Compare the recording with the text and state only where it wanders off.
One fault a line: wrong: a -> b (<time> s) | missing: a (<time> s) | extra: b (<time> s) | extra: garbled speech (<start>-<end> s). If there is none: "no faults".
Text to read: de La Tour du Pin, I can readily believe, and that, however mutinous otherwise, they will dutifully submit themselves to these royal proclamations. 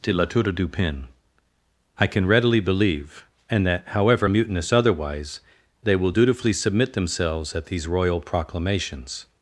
wrong: to -> at (7.6 s)